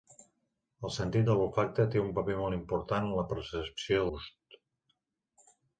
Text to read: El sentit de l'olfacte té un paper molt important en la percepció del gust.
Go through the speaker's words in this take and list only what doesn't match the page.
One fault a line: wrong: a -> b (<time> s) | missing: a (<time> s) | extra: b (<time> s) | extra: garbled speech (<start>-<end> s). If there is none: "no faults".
missing: del (4.0 s)